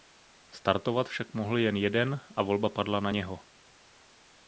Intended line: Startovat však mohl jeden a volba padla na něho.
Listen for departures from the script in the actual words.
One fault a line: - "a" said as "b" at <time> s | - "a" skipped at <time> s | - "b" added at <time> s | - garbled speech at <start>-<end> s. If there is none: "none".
- "jen" added at 1.6 s